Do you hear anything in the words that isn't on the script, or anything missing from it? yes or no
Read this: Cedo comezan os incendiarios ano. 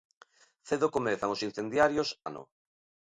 no